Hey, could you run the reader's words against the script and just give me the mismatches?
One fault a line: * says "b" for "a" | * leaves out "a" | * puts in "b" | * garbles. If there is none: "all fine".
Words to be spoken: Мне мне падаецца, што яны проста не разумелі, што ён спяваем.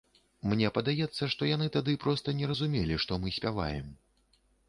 * leaves out "мне"
* puts in "тады"
* says "мы" for "ён"